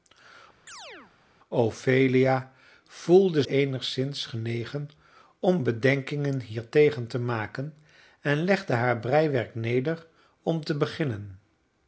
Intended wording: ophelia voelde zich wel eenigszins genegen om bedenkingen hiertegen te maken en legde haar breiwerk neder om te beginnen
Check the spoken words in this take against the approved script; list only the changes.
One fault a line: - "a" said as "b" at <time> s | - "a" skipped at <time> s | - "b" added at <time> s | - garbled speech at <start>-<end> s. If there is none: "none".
- "zich wel" skipped at 3.4 s